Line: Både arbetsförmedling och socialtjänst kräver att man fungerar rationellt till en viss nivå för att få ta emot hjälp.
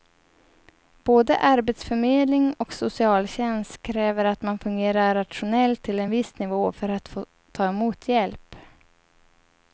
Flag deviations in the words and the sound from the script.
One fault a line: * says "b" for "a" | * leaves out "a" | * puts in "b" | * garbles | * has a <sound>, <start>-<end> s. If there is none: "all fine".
all fine